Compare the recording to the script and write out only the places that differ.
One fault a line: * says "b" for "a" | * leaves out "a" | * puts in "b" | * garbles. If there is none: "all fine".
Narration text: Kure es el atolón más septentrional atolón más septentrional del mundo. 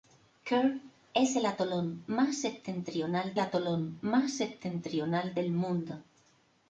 all fine